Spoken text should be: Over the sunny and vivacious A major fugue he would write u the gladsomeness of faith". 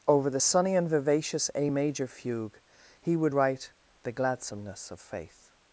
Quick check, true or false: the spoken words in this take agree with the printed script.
false